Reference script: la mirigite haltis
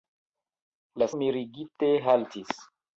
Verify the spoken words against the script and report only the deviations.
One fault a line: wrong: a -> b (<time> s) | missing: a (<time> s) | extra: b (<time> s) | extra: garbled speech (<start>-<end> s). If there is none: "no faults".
no faults